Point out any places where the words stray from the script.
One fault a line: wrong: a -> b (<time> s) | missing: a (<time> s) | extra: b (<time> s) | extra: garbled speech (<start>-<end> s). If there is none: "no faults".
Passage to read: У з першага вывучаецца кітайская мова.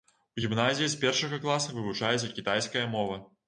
extra: гімназіі (0.4 s)
extra: класа (1.5 s)